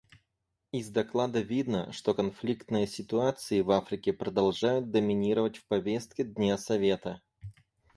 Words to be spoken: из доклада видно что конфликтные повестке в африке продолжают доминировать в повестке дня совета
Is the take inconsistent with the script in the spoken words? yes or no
yes